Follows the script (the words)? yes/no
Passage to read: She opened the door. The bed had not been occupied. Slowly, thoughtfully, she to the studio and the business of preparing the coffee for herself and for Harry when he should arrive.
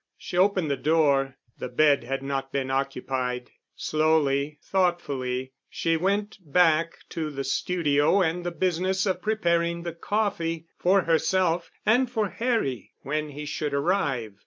no